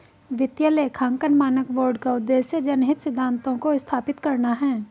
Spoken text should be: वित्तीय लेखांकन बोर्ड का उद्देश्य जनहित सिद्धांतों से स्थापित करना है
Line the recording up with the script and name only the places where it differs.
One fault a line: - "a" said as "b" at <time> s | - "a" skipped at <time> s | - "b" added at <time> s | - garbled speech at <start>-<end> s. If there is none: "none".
- "मानक" added at 1.3 s
- "से" said as "को" at 3.6 s